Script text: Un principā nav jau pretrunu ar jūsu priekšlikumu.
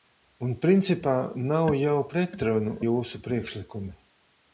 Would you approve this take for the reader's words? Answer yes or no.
no